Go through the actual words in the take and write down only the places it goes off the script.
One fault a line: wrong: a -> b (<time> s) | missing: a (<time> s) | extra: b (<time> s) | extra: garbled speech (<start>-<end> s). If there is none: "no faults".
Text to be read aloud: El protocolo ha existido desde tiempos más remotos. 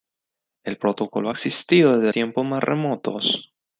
no faults